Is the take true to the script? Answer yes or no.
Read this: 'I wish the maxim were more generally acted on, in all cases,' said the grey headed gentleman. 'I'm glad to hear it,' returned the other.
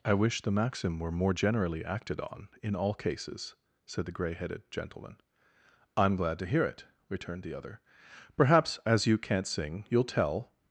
no